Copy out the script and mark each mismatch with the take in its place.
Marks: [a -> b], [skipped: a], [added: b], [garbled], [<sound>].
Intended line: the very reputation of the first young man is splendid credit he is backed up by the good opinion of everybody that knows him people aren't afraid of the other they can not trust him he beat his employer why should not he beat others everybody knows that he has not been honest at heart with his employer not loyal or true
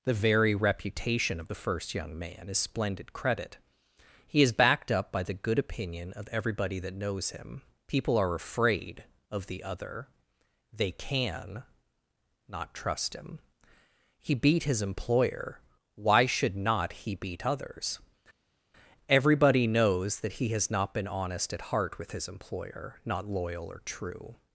the very reputation of the first young man is splendid credit he is backed up by the good opinion of everybody that knows him people [aren't -> are] afraid of the other they can not trust him he beat his employer why should not he beat others everybody knows that he has not been honest at heart with his employer not loyal or true